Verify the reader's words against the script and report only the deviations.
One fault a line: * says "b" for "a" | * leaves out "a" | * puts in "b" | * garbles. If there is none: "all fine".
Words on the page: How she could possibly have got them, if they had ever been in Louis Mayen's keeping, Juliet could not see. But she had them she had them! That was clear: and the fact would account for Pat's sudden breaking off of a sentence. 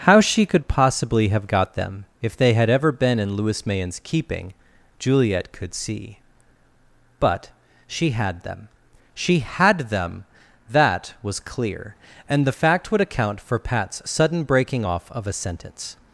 * leaves out "not"